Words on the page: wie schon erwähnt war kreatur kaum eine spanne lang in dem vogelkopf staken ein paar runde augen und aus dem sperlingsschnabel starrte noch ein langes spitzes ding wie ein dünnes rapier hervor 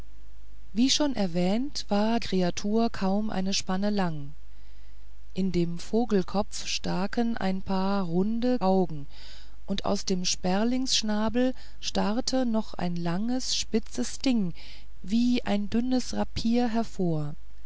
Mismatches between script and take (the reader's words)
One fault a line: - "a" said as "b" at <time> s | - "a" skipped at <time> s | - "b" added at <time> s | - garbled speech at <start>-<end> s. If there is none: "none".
none